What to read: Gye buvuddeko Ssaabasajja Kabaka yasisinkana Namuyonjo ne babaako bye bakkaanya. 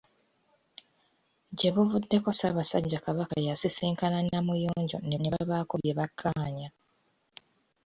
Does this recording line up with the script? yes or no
no